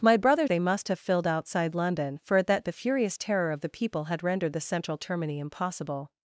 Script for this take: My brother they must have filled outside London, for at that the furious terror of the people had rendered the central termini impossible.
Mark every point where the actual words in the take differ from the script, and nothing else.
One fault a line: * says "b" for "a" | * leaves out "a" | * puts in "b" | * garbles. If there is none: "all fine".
all fine